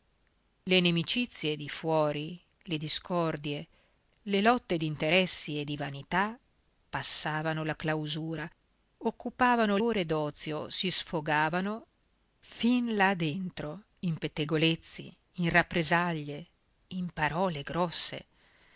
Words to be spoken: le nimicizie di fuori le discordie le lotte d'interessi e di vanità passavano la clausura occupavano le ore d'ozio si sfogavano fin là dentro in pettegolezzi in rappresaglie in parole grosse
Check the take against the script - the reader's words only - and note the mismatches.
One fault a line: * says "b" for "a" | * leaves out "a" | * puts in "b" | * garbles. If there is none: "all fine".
* leaves out "le"